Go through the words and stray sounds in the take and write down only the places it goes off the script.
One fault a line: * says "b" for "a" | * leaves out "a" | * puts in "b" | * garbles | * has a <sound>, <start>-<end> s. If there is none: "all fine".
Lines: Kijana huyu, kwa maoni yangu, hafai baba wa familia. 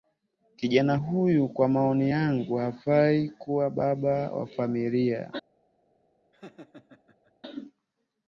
* puts in "kuwa"
* has a laugh, 6.3-7.3 s